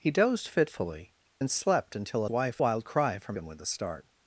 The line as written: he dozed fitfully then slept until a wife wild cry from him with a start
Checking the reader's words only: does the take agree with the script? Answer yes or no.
yes